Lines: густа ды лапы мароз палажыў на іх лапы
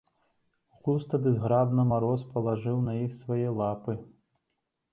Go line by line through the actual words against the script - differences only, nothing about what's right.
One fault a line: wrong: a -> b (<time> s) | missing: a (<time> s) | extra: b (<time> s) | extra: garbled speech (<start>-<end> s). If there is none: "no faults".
wrong: лапы -> зграбна (1.4 s)
extra: свае (3.2 s)